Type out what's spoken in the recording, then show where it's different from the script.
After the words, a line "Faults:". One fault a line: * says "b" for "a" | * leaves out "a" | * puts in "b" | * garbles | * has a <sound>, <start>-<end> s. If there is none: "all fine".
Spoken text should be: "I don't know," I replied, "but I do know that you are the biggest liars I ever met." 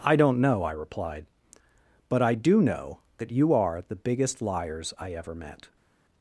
"I don't know," I replied, "but I do know that you are the biggest liars I ever met."
Faults:
all fine